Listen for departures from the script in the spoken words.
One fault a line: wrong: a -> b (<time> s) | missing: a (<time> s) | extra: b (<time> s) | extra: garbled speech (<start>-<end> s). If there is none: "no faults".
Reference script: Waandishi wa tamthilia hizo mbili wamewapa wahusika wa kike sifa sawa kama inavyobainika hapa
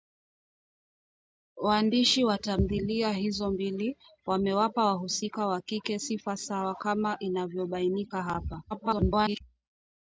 extra: garbled speech (8.7-9.4 s)